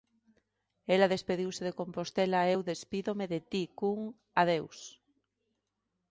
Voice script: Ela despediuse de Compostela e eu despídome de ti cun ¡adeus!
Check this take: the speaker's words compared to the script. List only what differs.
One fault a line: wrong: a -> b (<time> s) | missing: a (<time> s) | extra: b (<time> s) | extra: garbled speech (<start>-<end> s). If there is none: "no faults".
no faults